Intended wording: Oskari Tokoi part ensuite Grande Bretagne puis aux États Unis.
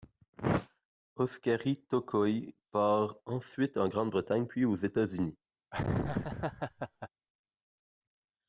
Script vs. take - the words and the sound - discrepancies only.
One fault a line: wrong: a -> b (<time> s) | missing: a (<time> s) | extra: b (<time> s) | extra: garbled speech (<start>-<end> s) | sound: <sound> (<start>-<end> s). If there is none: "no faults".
extra: en (3.8 s)
sound: laugh (5.7-7.1 s)